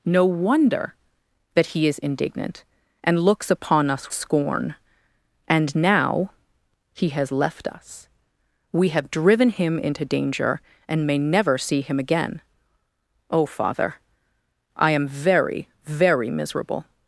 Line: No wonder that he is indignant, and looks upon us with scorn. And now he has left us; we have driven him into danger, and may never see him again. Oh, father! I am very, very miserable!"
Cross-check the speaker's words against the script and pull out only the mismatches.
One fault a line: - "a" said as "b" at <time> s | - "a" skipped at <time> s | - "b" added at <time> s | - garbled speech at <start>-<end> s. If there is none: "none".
- "with" skipped at 4.1 s